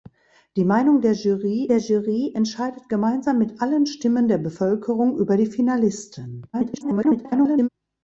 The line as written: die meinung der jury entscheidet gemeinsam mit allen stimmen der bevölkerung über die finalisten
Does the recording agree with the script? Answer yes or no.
no